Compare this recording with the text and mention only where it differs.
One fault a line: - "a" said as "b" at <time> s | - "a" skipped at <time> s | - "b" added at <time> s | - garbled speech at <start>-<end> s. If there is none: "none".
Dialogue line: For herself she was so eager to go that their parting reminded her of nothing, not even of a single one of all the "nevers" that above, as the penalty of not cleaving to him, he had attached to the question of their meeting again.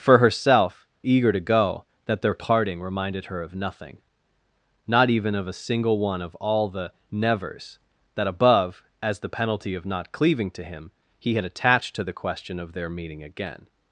- "she was so" skipped at 0.9 s